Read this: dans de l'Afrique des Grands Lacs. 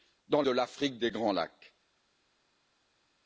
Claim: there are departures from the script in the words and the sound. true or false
false